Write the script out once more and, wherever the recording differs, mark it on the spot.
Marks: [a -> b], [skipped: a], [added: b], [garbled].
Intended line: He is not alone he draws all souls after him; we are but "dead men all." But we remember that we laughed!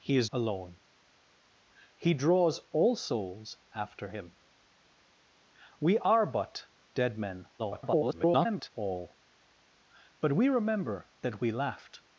He is [skipped: not] alone he draws all souls after him; we are but "dead men [garbled] all." But we remember that we laughed!